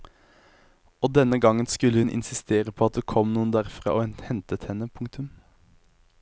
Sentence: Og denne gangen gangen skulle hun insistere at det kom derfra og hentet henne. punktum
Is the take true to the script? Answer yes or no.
no